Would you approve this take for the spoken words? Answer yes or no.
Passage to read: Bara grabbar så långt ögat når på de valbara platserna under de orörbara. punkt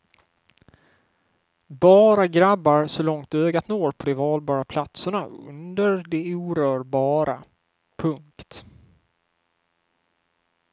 yes